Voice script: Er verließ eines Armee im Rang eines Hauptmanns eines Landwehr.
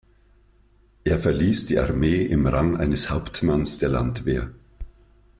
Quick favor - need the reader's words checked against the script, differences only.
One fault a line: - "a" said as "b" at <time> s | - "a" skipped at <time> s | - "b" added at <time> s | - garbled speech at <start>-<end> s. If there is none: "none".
- "eines" said as "die" at 1.7 s
- "eines" said as "der" at 3.8 s